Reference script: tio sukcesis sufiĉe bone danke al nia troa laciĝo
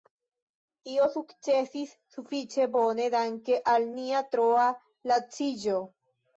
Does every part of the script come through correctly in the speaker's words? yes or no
yes